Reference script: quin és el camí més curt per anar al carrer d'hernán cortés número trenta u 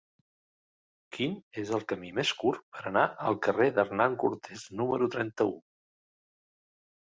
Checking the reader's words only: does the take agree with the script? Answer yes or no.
yes